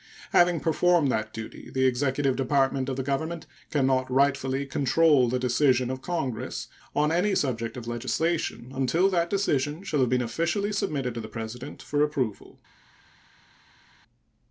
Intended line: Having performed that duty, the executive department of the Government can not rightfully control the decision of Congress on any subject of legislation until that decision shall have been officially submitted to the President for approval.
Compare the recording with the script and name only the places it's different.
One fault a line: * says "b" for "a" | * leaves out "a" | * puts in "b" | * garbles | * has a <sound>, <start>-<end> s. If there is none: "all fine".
all fine